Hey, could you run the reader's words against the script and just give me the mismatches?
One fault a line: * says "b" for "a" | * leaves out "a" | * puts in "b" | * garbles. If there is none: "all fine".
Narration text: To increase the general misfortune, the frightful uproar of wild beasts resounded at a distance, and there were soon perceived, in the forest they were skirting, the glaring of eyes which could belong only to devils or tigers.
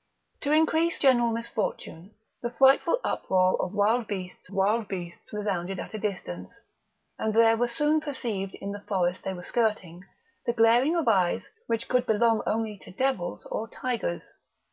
* leaves out "the"
* puts in "wild beasts"